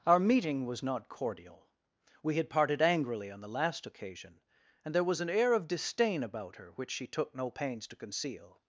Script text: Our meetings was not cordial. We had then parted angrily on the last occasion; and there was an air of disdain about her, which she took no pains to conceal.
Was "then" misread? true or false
true